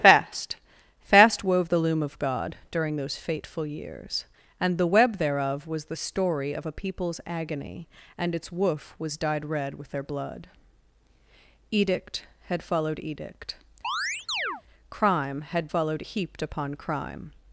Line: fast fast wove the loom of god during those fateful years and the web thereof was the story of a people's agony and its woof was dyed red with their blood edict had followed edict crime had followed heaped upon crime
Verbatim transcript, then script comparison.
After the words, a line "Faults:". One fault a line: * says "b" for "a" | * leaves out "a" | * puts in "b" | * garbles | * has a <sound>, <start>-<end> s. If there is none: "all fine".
fast fast wove the loom of god during those fateful years and the web thereof was the story of a people's agony and its woof was dyed red with their blood edict had followed edict crime had followed heaped upon crime
Faults:
* has a chirp, 13.8-14.6 s